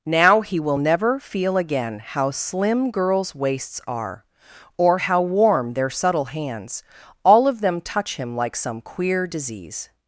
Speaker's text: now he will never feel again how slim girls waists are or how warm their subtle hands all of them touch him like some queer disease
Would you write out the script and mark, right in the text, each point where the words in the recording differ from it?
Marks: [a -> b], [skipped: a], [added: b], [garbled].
now he will never feel again how slim girls waists are or how warm their subtle hands all of them touch him like some queer disease